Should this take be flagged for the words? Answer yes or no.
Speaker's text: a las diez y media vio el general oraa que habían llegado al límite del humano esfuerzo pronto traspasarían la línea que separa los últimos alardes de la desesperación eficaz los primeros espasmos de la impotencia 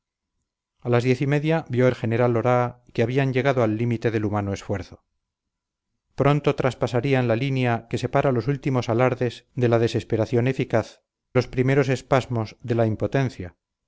no